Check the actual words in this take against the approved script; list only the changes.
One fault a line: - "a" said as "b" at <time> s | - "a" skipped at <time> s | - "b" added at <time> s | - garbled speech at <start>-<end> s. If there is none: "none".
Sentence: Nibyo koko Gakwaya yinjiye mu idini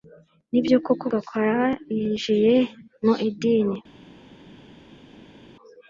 none